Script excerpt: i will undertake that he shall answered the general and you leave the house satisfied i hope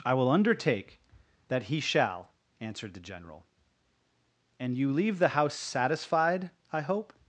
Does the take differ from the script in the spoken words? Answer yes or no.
no